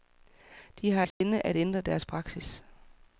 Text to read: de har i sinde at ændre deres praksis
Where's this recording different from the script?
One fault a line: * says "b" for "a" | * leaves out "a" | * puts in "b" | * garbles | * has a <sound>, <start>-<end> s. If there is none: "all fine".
* has a dropout, 1.1-1.2 s